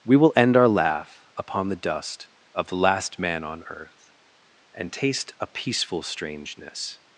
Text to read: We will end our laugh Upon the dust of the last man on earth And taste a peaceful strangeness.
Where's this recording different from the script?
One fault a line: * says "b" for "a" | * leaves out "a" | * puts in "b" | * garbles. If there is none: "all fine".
all fine